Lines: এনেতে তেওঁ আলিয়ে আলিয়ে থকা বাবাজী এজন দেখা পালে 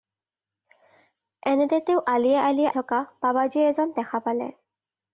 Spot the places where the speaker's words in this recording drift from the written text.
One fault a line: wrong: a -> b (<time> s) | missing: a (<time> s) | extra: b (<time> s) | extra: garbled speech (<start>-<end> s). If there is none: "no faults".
no faults